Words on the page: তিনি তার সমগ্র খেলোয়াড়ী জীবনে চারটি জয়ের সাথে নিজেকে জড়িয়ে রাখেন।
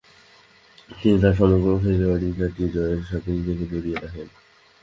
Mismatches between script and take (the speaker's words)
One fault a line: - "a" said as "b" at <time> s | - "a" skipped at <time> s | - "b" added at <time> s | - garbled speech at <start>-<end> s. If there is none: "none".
- "জীবনে" skipped at 2.3 s